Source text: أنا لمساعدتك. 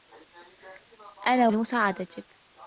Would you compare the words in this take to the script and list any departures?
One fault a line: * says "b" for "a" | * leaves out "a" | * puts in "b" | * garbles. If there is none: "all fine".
all fine